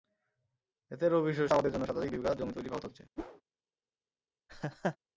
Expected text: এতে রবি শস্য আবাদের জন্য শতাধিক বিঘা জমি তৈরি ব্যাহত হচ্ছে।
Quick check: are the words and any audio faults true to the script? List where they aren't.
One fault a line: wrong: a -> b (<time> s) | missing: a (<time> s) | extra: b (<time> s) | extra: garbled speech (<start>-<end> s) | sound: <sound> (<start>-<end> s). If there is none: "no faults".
sound: whoosh (3.2-3.4 s)
sound: laugh (4.5-5.0 s)